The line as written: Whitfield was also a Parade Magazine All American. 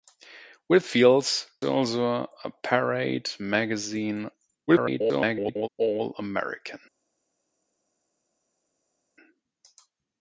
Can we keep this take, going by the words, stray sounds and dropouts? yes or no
no